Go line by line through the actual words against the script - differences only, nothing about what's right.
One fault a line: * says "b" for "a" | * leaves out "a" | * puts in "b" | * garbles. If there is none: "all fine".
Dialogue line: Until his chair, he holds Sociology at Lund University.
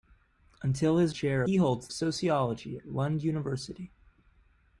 all fine